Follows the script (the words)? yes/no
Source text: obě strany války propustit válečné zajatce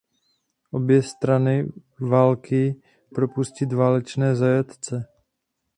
yes